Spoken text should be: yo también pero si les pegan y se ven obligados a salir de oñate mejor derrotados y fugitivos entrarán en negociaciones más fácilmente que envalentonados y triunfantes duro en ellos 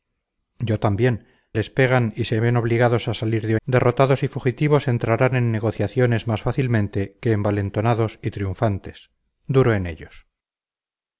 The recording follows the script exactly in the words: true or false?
false